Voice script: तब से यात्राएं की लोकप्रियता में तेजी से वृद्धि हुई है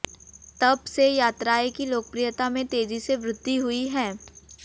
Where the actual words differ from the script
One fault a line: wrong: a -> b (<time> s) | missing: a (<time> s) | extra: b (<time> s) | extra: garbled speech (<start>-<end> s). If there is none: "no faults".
no faults